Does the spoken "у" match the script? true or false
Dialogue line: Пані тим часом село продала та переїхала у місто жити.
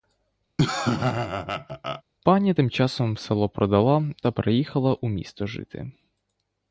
true